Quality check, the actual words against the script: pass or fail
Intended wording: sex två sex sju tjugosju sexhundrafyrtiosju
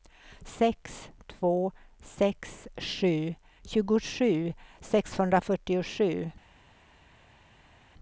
pass